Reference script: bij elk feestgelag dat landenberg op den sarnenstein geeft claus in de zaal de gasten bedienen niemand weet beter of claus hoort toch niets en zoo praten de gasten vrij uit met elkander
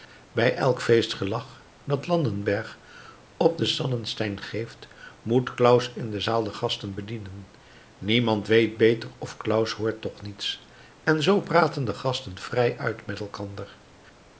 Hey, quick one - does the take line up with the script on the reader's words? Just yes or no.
no